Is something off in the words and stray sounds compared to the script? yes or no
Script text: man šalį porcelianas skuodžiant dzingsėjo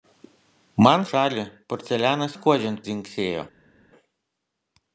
no